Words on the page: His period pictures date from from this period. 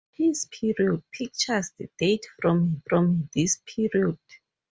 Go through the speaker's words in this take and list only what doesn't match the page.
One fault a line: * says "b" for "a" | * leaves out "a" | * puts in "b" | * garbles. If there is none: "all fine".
all fine